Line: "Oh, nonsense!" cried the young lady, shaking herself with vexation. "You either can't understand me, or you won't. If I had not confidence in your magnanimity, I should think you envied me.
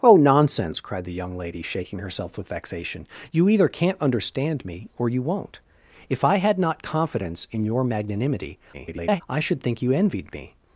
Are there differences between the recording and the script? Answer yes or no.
yes